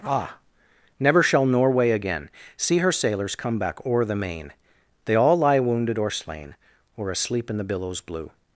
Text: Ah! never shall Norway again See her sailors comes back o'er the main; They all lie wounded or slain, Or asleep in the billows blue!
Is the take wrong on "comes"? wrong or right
wrong